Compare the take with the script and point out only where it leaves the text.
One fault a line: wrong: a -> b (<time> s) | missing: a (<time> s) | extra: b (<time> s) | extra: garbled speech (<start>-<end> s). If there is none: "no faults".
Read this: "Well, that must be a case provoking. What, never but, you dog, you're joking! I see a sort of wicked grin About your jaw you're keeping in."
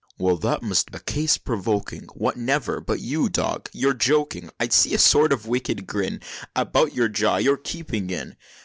missing: be (0.9 s)